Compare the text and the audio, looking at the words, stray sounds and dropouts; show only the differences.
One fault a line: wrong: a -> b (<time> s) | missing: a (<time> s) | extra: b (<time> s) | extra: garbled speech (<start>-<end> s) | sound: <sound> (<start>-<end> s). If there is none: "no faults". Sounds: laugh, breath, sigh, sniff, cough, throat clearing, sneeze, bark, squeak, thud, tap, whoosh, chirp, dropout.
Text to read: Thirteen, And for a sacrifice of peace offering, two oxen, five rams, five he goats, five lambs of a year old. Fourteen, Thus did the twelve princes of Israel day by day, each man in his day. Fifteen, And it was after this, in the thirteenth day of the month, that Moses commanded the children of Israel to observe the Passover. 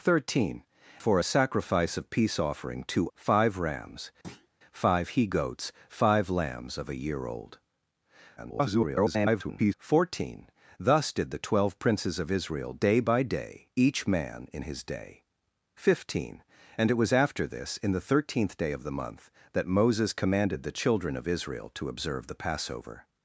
missing: And (0.6 s)
missing: oxen (3.1 s)
sound: thud (4.2-4.5 s)
extra: garbled speech (8.4-9.7 s)